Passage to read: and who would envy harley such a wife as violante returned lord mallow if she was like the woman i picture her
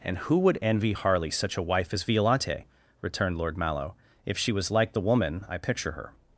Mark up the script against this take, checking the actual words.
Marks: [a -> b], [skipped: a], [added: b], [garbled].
and who would envy harley such a wife as violante returned lord mallow if she was like the woman i picture her